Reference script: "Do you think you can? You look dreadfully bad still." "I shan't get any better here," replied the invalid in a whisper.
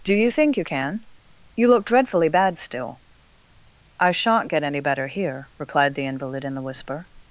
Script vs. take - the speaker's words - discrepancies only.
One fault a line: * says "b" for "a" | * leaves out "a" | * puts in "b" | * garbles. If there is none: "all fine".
* says "the" for "a"